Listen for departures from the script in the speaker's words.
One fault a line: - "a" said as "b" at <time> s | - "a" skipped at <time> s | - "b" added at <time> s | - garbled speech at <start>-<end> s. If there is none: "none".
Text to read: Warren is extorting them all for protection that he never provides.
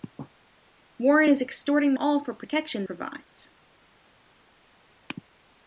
- "them" skipped at 1.9 s
- "that he never" skipped at 2.9 s